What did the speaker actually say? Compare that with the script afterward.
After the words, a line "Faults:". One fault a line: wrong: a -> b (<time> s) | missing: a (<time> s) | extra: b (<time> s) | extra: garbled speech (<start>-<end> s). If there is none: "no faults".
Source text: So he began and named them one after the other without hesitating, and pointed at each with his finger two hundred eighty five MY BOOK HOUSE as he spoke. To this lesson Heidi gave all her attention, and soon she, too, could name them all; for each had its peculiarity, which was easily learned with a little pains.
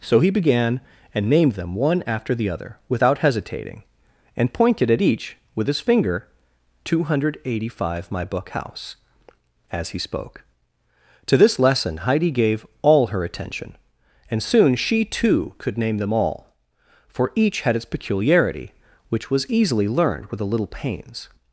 So he began and named them one after the other without hesitating, and pointed at each with his finger two hundred eighty five MY BOOK HOUSE as he spoke. To this lesson Heidi gave all her attention, and soon she, too, could name them all; for each had its peculiarity, which was easily learned with a little pains.
Faults:
no faults